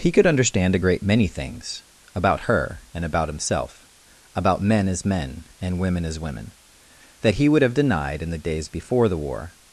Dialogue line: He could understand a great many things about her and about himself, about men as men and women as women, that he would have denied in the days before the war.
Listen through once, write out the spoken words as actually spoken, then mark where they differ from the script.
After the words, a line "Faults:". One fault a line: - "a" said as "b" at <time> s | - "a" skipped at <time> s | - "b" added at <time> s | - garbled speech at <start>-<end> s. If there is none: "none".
He could understand a great many things about her and about himself, about men as men and women as women, that he would have denied in the days before the war.
Faults:
none